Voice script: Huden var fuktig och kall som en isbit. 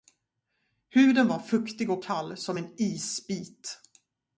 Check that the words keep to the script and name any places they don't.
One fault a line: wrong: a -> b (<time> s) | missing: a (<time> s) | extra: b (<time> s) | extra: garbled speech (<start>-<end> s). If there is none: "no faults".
no faults